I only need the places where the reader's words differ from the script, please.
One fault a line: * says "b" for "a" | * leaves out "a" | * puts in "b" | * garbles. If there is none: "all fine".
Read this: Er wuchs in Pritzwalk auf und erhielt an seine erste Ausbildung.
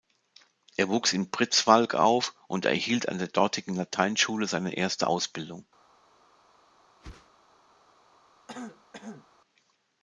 * puts in "der dortigen Lateinschule"